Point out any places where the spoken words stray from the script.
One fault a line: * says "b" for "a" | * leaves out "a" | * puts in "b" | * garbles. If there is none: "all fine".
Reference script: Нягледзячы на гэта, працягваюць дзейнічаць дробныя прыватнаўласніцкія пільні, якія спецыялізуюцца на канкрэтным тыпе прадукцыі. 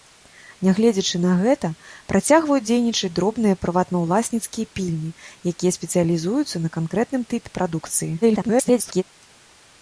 * garbles